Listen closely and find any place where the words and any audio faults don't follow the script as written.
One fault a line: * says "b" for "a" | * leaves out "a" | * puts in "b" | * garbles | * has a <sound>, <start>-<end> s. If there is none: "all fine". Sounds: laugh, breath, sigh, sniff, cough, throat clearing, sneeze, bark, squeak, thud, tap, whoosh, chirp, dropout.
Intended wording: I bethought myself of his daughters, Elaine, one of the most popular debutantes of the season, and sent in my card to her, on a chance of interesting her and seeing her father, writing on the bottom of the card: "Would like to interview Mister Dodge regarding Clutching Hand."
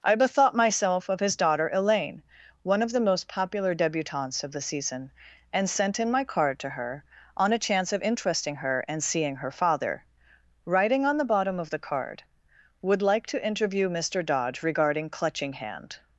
* says "daughter" for "daughters"